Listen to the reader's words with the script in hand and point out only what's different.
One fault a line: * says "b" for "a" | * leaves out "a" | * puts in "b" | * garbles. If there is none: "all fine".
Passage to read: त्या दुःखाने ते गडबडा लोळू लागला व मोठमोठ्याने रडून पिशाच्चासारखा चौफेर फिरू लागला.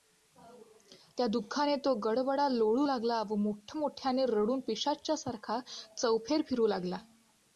* says "तो" for "ते"